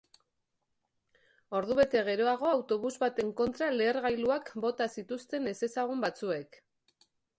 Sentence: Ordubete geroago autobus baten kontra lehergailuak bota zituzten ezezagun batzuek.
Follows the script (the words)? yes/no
yes